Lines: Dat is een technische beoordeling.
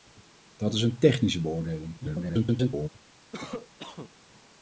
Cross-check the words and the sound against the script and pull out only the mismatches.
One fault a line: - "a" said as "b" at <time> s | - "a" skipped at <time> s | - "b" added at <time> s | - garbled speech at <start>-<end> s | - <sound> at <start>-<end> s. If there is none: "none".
- garbled speech at 2.0-2.9 s
- cough at 3.3-4.1 s